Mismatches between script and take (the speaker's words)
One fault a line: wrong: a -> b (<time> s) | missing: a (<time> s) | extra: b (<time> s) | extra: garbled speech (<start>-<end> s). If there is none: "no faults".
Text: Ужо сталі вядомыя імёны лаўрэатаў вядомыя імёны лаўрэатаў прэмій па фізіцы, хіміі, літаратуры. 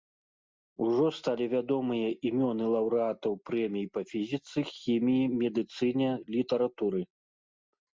missing: вядомыя імёны лаўрэатаў (3.3 s)
extra: медыцыне (5.4 s)